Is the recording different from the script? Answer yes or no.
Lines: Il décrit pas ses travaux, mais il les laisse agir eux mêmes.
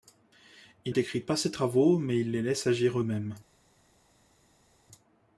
no